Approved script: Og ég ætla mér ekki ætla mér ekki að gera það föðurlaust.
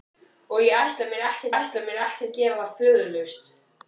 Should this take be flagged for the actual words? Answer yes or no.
no